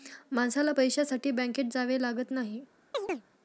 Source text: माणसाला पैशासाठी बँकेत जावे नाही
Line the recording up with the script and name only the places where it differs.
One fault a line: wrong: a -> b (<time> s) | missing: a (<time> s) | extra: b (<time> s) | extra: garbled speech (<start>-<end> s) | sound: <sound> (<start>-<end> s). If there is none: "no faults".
extra: लागत (2.0 s)
sound: chirp (2.9-3.2 s)